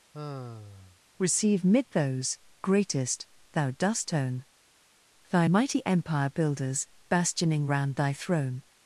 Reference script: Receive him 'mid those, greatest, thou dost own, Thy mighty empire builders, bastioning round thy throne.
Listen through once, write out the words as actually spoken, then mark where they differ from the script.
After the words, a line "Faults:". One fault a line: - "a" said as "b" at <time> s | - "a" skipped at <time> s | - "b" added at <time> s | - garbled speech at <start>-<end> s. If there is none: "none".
Receive 'mid those, greatest, thou dost own, Thy mighty empire builders, bastioning round thy throne.
Faults:
- "him" skipped at 1.6 s